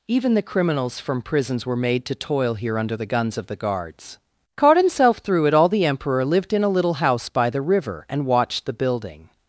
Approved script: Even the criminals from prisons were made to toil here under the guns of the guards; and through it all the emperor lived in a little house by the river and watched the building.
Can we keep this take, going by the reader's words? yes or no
no